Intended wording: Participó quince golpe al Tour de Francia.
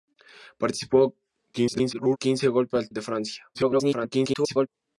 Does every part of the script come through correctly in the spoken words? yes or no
no